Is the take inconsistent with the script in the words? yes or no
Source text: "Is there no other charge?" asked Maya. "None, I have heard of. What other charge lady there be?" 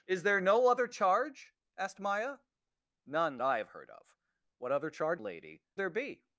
no